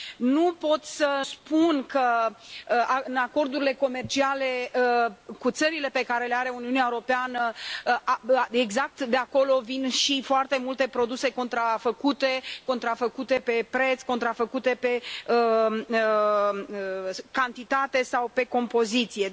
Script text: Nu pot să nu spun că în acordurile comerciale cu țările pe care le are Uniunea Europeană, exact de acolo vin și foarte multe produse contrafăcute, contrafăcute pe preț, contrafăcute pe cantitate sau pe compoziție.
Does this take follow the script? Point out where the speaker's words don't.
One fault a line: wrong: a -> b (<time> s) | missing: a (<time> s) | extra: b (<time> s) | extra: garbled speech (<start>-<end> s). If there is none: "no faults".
missing: nu (1.2 s)